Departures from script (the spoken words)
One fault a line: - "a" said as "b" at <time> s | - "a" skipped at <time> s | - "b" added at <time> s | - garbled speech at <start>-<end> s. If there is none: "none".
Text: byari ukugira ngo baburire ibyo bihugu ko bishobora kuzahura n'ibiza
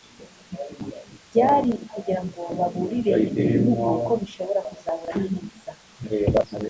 none